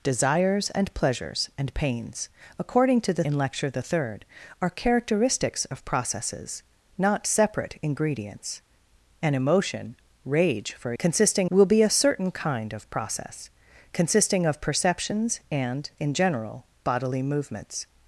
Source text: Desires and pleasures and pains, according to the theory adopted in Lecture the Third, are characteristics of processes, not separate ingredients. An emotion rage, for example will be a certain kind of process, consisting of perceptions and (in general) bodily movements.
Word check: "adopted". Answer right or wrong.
wrong